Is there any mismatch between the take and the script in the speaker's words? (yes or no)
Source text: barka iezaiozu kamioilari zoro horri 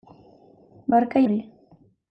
yes